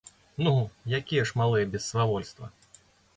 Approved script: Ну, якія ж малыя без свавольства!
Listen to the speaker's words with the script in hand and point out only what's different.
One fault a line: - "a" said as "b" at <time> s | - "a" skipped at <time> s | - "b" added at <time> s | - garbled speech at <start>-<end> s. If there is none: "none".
none